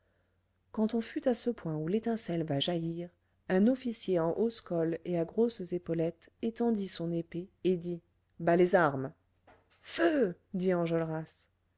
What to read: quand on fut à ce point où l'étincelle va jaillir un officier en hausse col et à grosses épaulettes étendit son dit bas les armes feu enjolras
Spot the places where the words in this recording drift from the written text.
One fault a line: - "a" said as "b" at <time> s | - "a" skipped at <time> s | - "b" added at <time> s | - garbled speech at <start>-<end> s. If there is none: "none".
- "épée et" added at 7.1 s
- "dit" added at 10.5 s